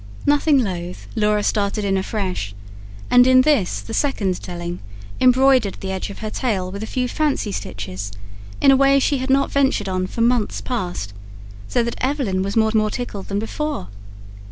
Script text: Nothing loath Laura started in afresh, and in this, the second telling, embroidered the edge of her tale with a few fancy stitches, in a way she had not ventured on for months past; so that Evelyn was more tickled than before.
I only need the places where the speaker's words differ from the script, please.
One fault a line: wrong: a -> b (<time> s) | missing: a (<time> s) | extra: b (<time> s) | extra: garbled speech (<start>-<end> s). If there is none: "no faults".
extra: more (12.7 s)